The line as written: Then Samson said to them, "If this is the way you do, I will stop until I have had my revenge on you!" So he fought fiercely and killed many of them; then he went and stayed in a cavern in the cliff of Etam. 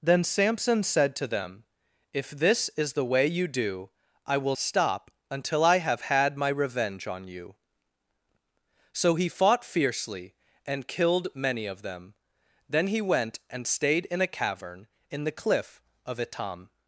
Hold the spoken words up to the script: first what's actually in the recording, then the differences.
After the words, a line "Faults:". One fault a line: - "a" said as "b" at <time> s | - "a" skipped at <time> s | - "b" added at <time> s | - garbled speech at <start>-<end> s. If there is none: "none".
Then Samson said to them, "If this is the way you do, I will stop until I have had my revenge on you!" So he fought fiercely and killed many of them; then he went and stayed in a cavern in the cliff of Etam.
Faults:
none